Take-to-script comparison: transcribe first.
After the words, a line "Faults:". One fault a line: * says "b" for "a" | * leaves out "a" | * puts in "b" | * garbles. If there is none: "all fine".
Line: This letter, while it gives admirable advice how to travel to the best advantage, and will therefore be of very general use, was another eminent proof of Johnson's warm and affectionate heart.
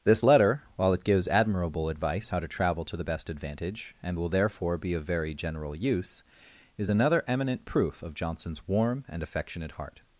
This letter, while it gives admirable advice how to travel to the best advantage, and will therefore be of very general use, is another eminent proof of Johnson's warm and affectionate heart.
Faults:
* says "is" for "was"